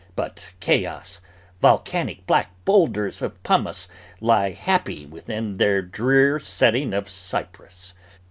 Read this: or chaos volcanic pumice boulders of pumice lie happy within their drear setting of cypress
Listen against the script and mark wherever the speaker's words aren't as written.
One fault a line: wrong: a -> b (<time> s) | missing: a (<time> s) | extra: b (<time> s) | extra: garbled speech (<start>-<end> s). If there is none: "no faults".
wrong: or -> but (0.1 s)
wrong: pumice -> black (2.2 s)